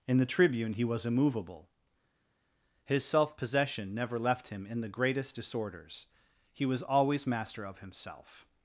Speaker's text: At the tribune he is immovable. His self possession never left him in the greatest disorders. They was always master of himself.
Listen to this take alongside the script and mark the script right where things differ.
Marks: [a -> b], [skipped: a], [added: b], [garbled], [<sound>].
[At -> In] the tribune he [is -> was] immovable. His self possession never left him in the greatest disorders. [They -> He] was always master of himself.